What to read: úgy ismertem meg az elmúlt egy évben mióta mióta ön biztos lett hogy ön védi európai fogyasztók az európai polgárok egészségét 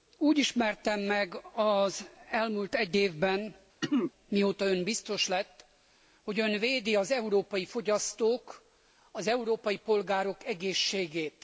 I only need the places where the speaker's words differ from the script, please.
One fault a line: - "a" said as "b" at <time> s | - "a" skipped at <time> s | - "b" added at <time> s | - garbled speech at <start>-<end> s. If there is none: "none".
- "mióta" skipped at 4.6 s
- "az" added at 6.9 s